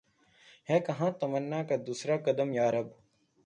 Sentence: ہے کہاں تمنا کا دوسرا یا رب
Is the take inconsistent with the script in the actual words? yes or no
yes